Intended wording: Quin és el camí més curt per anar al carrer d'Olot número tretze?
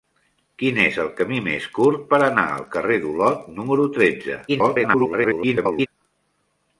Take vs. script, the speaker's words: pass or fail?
fail